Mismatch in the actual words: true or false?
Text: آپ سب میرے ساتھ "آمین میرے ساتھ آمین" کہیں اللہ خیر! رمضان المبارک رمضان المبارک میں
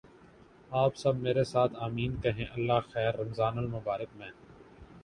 true